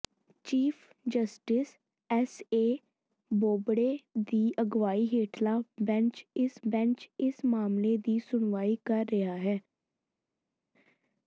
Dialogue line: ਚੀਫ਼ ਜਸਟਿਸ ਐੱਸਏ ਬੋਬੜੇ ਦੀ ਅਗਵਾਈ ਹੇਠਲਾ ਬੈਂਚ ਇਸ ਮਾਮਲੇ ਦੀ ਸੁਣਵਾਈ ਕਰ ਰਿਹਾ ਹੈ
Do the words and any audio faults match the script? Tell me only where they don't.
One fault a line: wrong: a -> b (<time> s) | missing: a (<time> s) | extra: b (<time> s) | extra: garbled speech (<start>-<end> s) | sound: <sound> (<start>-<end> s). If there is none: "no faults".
extra: ਬੈਂਚ ਇਸ (6.7 s)